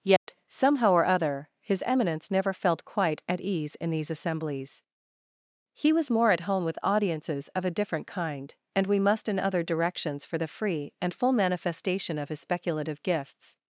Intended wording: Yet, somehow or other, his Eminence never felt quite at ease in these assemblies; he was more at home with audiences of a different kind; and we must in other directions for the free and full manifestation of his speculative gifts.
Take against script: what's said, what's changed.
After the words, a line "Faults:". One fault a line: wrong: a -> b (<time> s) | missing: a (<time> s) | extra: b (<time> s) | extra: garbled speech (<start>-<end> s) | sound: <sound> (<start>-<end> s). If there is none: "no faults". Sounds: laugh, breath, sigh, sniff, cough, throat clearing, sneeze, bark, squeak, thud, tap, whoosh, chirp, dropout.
Yet, somehow or other, his Eminence never felt quite at ease in these assemblies; he was more at home with audiences of a different kind; and we must in other directions for the free and full manifestation of his speculative gifts.
Faults:
sound: dropout (0.2-0.3 s)